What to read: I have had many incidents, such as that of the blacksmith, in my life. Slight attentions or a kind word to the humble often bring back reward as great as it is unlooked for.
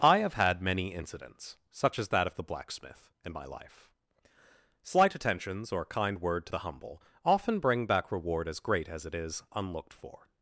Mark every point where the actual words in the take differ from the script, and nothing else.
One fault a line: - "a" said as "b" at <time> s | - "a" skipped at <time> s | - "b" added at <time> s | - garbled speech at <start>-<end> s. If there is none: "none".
- "a" skipped at 5.8 s